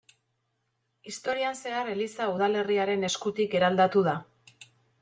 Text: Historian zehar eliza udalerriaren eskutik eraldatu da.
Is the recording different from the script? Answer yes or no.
no